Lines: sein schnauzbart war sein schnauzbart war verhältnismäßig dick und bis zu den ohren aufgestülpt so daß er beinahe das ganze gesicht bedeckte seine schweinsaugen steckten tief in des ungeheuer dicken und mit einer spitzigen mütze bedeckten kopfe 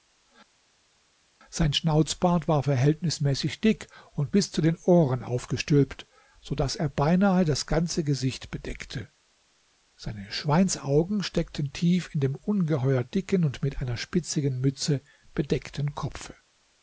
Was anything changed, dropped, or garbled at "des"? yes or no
yes